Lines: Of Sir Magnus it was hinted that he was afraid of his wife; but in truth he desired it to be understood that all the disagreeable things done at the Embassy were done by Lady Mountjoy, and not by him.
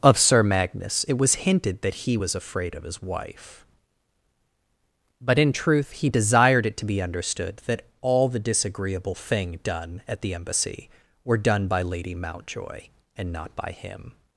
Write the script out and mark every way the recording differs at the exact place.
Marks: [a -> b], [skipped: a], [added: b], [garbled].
Of Sir Magnus it was hinted that he was afraid of his wife; but in truth he desired it to be understood that all the disagreeable [things -> thing] done at the Embassy were done by Lady Mountjoy, and not by him.